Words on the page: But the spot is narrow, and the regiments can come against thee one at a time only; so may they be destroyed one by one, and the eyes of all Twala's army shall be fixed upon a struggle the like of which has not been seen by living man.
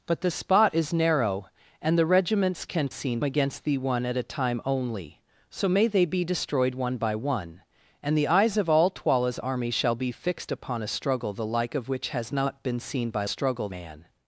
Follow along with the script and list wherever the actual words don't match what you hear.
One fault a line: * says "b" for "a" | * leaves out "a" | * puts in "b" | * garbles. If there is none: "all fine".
* says "seen" for "come"
* says "struggle" for "living"